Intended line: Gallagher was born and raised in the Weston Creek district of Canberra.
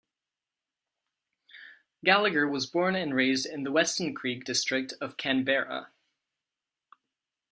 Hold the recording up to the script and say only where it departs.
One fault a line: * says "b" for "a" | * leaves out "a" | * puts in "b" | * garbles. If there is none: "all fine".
all fine